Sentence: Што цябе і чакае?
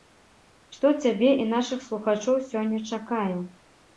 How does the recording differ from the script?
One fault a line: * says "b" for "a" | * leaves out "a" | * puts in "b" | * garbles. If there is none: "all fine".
* puts in "нашых слухачоў сёння"